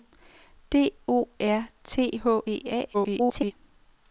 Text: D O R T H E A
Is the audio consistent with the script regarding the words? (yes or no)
no